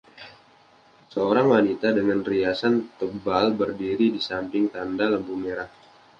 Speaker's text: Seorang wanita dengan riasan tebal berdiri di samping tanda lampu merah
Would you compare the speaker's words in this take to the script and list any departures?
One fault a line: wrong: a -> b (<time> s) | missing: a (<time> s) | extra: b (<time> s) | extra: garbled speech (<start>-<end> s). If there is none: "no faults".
no faults